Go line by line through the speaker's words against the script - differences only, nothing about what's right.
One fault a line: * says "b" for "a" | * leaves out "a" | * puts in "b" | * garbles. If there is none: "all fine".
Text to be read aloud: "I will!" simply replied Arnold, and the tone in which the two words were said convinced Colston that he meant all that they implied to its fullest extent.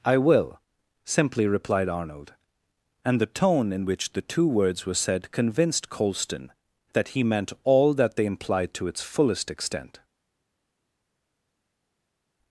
all fine